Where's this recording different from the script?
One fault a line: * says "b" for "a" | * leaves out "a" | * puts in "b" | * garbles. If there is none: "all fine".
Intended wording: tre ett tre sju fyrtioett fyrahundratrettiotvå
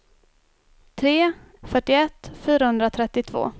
* leaves out "ett tre sju"